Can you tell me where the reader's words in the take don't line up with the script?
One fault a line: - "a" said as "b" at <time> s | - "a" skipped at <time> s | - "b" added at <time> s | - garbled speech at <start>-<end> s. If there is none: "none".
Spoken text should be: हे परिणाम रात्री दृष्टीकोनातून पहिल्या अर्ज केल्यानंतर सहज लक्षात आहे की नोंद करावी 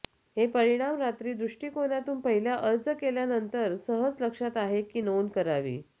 none